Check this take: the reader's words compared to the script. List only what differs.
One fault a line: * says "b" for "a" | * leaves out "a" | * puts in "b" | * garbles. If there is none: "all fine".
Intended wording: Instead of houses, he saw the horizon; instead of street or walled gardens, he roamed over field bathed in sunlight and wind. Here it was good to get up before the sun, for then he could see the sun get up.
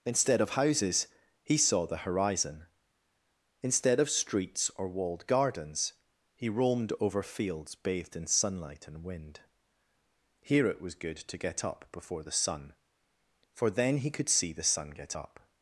* says "streets" for "street"
* says "fields" for "field"